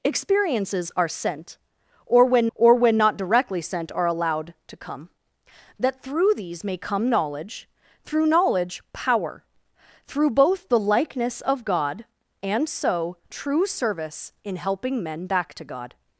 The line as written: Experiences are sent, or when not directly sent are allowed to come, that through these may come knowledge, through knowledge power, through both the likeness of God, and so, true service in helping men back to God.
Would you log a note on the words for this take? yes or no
yes